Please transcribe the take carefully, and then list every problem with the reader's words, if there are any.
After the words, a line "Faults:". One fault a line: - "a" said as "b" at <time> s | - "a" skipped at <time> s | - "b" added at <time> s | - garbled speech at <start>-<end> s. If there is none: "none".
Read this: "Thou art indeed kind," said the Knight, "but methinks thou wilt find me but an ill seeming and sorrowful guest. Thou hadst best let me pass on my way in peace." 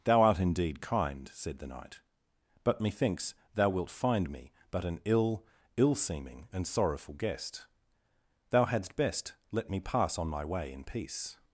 "Thou art indeed kind," said the Knight, "but methinks thou wilt find me but an ill ill seeming and sorrowful guest. Thou hadst best let me pass on my way in peace."
Faults:
- "ill" added at 5.8 s